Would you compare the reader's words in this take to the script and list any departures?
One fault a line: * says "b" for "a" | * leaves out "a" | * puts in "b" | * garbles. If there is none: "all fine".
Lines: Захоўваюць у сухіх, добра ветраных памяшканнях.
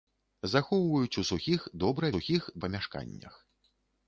* says "сухіх" for "ветраных"